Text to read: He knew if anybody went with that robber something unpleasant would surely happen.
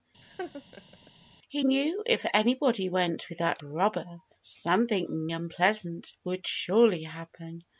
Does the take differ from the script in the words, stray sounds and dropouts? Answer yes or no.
yes